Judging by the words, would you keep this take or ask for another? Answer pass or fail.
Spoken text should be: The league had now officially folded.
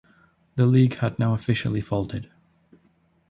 pass